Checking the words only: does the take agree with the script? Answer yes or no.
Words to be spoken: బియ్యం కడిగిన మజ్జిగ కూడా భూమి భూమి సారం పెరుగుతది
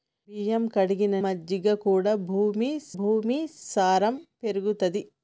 yes